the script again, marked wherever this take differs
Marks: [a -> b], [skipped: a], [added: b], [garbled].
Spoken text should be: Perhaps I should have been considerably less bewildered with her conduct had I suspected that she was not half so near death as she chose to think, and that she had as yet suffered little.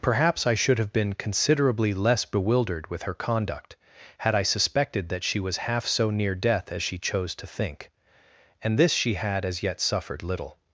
Perhaps I should have been considerably less bewildered with her conduct had I suspected that she was [skipped: not] half so near death as she chose to think, and [that -> this] she had as yet suffered little.